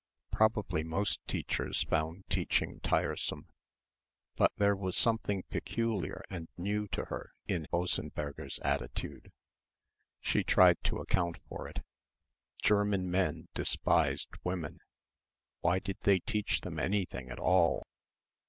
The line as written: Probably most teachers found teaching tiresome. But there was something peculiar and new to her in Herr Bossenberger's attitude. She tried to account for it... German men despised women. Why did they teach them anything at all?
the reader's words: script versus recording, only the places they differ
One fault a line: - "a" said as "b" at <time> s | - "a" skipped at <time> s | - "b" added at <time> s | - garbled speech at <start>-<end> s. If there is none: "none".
- "Herr" skipped at 7.6 s